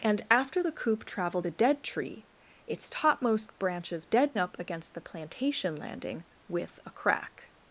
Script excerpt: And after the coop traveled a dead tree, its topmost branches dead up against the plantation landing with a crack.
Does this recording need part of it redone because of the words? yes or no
no